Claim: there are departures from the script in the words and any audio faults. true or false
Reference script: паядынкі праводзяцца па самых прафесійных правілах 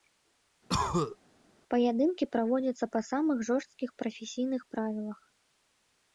true